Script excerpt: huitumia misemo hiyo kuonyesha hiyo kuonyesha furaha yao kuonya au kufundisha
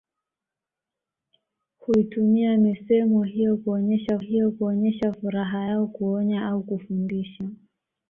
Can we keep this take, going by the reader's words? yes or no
yes